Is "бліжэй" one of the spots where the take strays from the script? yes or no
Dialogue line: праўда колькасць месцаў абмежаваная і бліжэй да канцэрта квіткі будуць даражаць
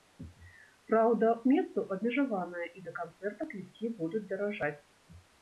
yes